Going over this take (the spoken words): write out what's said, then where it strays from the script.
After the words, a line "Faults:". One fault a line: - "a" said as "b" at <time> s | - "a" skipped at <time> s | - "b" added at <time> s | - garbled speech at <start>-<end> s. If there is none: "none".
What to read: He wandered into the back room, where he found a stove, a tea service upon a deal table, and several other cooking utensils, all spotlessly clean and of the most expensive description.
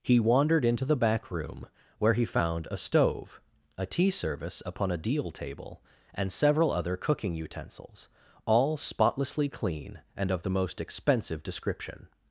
He wandered into the back room, where he found a stove, a tea service upon a deal table, and several other cooking utensils, all spotlessly clean and of the most expensive description.
Faults:
none